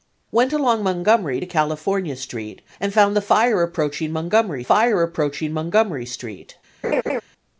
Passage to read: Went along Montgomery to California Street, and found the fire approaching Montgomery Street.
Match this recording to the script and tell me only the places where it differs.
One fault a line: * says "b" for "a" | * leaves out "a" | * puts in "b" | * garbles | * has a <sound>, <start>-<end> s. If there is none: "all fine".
* puts in "fire approaching Montgomery"
* has a laugh, 6.8-7.2 s